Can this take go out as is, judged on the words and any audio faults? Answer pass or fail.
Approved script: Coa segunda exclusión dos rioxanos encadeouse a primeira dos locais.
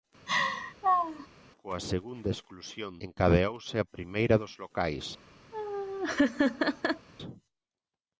fail